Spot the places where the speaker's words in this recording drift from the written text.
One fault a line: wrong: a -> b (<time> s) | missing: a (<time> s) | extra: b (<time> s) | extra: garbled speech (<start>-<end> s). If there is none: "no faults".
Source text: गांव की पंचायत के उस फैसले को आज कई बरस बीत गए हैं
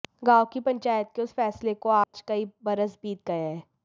no faults